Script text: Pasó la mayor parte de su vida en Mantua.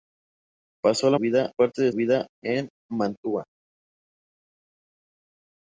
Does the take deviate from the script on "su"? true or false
true